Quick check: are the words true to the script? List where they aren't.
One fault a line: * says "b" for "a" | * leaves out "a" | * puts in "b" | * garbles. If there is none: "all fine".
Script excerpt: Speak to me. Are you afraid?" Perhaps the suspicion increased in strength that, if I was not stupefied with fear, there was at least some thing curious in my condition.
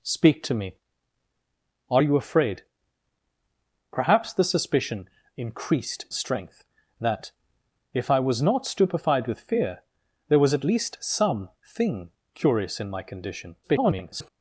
* leaves out "in"
* garbles